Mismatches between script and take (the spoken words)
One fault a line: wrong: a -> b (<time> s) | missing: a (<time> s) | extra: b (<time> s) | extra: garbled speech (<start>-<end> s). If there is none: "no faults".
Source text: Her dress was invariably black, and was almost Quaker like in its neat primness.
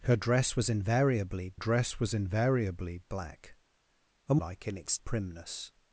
wrong: black and was almost Quaker -> dress was invariably black and (1.5 s)
missing: neat (5.0 s)